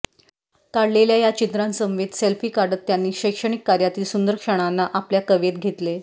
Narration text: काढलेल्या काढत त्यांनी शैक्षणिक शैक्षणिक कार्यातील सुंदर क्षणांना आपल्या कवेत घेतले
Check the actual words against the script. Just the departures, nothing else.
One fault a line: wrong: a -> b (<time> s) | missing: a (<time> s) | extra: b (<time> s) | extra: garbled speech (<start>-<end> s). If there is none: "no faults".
extra: या चित्रांसमवेत सेल्फी (1.2 s)
missing: शैक्षणिक (3.6 s)